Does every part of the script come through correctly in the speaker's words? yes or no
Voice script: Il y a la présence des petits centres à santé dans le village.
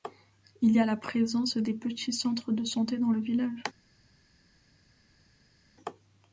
no